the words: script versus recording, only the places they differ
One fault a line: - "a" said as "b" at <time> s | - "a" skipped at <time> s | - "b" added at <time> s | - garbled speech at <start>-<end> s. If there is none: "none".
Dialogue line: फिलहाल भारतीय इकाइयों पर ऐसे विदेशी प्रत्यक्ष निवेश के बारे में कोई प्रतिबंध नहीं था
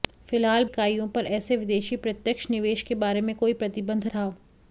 - "भारतीय" skipped at 0.6 s
- "नहीं" skipped at 4.1 s